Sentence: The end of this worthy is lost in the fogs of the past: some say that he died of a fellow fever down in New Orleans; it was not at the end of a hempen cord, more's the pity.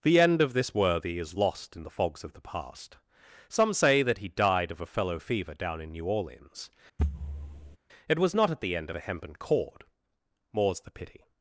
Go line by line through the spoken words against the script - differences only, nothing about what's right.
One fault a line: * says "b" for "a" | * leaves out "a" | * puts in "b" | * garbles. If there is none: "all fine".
all fine